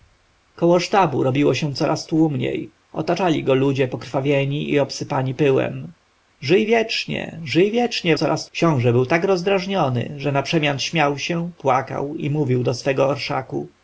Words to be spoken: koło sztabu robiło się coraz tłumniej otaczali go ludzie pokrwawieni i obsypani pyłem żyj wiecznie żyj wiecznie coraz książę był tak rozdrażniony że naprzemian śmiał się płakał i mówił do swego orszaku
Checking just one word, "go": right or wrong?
right